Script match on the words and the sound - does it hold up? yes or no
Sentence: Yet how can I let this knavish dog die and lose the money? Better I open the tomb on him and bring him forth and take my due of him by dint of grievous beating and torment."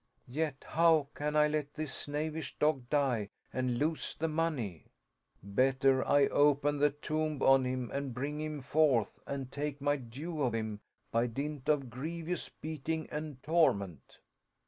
yes